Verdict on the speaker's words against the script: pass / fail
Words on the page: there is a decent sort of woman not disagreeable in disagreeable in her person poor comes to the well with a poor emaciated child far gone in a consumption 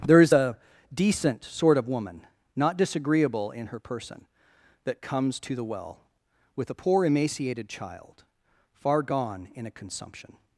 fail